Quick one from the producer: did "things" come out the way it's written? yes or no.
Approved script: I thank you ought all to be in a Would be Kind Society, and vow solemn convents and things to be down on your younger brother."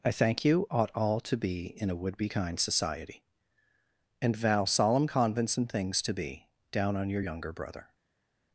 yes